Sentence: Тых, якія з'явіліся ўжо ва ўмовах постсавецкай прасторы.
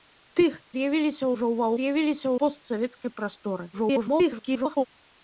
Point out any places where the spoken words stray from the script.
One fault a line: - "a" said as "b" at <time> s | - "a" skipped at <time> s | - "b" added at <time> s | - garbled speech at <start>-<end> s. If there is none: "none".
- "якія" skipped at 0.6 s
- "ўмовах" said as "з'явіліся" at 1.8 s
- garbled speech at 3.7-4.9 s